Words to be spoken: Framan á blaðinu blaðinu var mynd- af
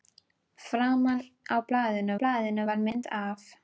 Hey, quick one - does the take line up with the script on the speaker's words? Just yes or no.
yes